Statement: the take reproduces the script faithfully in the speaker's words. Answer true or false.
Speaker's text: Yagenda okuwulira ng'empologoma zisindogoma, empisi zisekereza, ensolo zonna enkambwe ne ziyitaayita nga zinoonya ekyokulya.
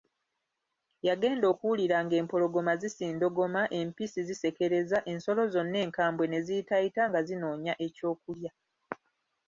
true